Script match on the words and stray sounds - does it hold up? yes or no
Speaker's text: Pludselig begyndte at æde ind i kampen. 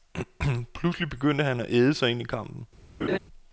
no